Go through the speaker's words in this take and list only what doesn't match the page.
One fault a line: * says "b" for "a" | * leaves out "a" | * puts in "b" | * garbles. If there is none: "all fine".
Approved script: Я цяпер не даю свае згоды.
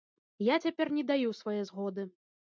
all fine